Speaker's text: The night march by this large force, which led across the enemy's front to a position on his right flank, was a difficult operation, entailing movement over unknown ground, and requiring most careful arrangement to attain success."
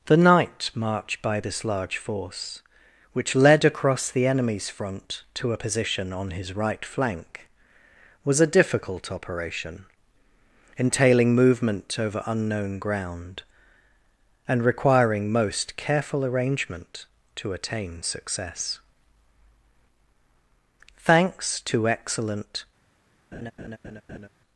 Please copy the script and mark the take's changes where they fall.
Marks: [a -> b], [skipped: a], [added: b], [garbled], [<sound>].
The night march by this large force, which led across the enemy's front to a position on his right flank, was a difficult operation, entailing movement over unknown ground, and requiring most careful arrangement to attain success." [added: Thanks to excellent] [laugh]